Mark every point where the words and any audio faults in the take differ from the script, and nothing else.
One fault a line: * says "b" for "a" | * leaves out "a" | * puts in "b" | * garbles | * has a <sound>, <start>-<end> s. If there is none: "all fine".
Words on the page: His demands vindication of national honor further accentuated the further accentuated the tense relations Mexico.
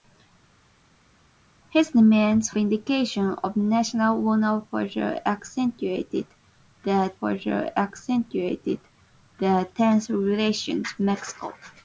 all fine